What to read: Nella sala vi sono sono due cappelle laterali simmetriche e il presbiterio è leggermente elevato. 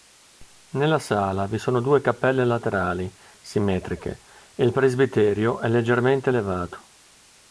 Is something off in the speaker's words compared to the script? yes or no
yes